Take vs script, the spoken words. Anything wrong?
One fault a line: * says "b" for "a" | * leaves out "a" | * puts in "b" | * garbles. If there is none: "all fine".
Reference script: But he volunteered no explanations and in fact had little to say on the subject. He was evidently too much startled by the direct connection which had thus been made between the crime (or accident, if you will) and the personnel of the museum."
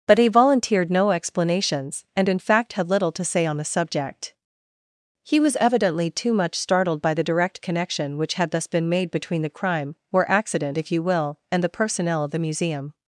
all fine